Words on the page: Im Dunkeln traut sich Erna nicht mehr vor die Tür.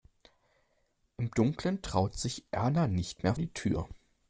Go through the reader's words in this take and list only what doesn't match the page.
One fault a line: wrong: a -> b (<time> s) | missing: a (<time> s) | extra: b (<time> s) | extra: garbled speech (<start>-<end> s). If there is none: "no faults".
missing: vor (3.3 s)